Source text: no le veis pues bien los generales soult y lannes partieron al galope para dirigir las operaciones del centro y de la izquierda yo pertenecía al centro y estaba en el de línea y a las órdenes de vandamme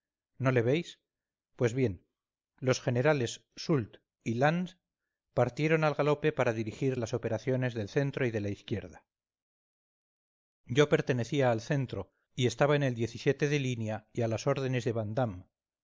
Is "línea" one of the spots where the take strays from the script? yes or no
no